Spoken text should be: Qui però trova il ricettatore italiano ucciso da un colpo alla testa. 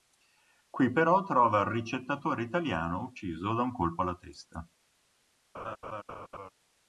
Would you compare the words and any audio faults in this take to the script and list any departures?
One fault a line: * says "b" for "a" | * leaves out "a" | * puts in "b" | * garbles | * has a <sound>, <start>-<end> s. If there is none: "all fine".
* has a laugh, 5.5-6.5 s